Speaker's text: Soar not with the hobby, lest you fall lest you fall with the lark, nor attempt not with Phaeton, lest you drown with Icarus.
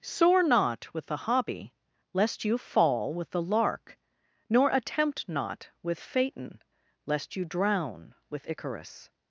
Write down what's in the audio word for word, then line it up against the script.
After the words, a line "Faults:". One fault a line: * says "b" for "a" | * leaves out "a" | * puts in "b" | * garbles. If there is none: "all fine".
Soar not with the hobby, lest you fall with the lark, nor attempt not with Phaeton, lest you drown with Icarus.
Faults:
* leaves out "lest you fall"